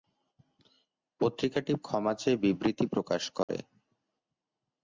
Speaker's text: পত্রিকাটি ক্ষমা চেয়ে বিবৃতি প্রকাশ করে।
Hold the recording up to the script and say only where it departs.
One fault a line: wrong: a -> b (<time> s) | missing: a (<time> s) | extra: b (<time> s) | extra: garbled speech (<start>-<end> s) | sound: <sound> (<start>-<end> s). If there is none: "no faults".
sound: dropout (3.4-3.5 s)